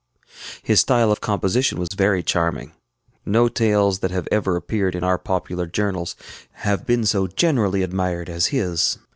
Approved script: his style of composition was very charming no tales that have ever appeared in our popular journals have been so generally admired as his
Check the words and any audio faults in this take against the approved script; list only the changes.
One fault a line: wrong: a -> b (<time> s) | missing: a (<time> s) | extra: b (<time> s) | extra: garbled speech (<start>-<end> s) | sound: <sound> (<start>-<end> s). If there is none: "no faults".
sound: dropout (1.9-1.9 s)